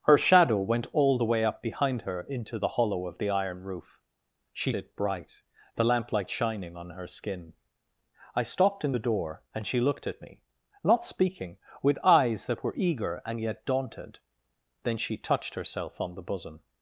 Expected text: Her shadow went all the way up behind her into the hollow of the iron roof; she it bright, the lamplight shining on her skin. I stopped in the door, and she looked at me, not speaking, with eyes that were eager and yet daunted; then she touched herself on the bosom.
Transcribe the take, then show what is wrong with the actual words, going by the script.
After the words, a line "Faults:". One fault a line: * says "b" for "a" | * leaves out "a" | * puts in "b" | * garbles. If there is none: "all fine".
Her shadow went all the way up behind her into the hollow of the iron roof; she it bright, the lamplight shining on her skin. I stopped in the door, and she looked at me, not speaking, with eyes that were eager and yet daunted; then she touched herself on the bosom.
Faults:
all fine